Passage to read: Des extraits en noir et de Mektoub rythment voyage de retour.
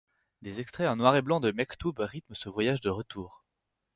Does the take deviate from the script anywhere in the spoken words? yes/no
yes